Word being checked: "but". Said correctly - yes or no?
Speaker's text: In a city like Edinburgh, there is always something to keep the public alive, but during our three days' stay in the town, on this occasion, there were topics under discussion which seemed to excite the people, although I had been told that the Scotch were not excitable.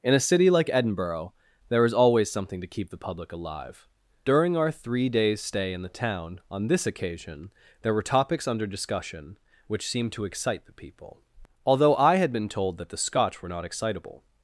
no